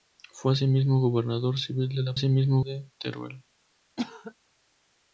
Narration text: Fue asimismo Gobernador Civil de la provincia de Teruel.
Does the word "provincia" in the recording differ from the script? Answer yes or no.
yes